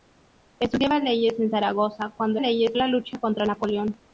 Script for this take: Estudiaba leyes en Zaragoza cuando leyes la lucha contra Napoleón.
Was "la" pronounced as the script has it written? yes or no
yes